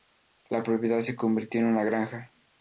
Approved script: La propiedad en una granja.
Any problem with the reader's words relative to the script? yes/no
yes